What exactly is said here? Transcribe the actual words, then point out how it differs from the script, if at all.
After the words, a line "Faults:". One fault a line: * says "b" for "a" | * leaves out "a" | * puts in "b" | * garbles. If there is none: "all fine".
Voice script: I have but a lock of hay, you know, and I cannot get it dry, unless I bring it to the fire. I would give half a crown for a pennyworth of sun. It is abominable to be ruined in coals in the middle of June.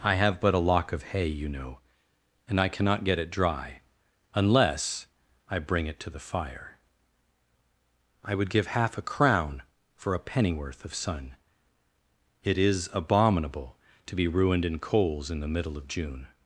I have but a lock of hay, you know, and I cannot get it dry, unless I bring it to the fire. I would give half a crown for a pennyworth of sun. It is abominable to be ruined in coals in the middle of June.
Faults:
all fine